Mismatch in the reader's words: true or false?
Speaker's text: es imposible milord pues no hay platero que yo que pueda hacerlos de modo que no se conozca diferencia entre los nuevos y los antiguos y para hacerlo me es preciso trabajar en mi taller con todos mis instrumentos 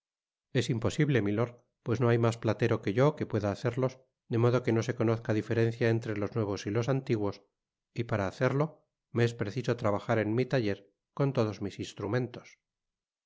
true